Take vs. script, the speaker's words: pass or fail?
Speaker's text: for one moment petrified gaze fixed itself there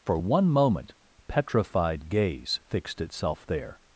pass